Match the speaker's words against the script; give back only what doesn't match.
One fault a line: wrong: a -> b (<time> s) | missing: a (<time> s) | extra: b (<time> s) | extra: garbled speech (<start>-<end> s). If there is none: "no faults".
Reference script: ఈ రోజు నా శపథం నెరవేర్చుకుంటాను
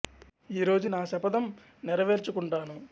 no faults